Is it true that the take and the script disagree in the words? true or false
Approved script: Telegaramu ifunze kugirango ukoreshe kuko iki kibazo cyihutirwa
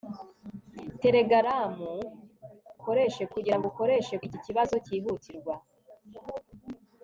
true